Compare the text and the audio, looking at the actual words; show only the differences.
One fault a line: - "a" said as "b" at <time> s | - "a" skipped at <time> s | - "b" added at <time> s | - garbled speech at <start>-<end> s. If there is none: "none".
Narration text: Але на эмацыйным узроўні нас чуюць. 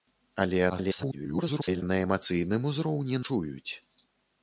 - garbled speech at 0.7-1.8 s
- "нас" skipped at 3.2 s